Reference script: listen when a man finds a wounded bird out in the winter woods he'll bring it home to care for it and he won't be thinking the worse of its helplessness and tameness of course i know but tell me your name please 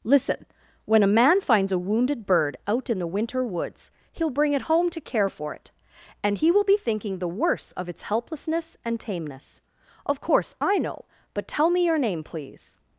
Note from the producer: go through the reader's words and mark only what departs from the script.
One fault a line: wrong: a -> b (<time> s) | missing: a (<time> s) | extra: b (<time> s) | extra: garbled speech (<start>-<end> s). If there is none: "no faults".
wrong: won't -> will (6.5 s)